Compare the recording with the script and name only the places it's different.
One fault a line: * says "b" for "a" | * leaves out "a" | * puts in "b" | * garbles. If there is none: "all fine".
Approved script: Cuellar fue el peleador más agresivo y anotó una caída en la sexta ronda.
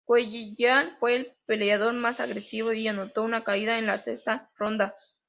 all fine